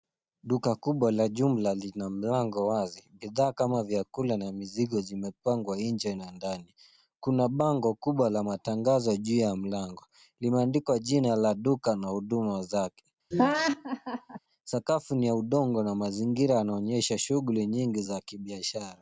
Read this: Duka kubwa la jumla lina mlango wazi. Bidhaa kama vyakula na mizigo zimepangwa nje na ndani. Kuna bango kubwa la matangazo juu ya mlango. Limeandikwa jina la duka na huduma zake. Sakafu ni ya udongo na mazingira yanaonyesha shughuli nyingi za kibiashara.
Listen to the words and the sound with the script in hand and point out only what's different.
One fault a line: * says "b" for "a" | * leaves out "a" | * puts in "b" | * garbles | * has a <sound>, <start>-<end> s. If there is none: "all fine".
* has a laugh, 13.3-14.4 s